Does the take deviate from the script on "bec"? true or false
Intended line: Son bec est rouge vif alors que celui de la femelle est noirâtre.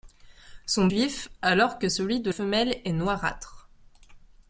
true